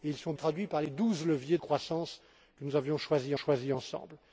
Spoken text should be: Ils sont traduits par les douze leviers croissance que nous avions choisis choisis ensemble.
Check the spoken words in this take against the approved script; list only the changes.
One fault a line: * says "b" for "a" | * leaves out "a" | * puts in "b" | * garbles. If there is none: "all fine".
all fine